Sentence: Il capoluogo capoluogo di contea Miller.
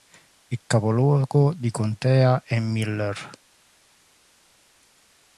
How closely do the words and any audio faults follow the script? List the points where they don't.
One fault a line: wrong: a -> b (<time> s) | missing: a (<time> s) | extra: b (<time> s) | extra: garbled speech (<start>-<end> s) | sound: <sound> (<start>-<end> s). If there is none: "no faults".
missing: capoluogo (1.5 s)
extra: è (2.4 s)